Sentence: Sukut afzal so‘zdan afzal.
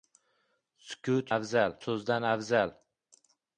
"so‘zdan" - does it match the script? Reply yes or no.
yes